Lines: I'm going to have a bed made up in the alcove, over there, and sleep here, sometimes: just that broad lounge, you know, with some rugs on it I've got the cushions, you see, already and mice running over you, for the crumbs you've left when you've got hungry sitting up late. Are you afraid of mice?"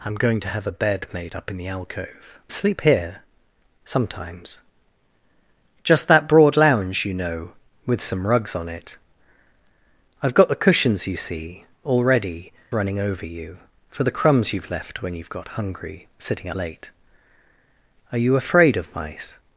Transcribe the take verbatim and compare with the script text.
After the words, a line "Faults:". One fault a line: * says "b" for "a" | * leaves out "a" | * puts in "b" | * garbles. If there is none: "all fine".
I'm going to have a bed made up in the alcove, sleep here, sometimes: just that broad lounge, you know, with some rugs on it I've got the cushions, you see, already running over you, for the crumbs you've left when you've got hungry sitting late. Are you afraid of mice?"
Faults:
* leaves out "over there and"
* leaves out "and mice"
* leaves out "up"